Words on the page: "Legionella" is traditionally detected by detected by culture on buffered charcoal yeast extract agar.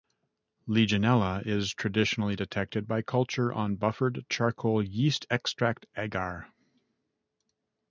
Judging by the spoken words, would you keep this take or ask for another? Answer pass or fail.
fail